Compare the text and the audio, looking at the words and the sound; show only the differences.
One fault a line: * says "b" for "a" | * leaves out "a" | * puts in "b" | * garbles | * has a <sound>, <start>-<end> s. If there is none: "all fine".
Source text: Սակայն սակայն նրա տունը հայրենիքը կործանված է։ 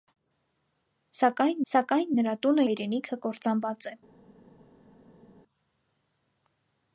all fine